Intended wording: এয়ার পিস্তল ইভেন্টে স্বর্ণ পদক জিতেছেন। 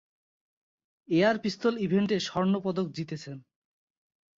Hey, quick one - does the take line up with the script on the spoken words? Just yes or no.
yes